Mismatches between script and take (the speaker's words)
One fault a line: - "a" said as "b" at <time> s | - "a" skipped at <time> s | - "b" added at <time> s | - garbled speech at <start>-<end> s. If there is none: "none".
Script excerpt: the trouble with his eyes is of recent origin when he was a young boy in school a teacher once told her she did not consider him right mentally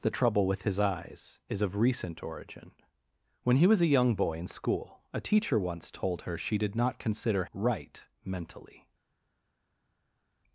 - "him" skipped at 7.5 s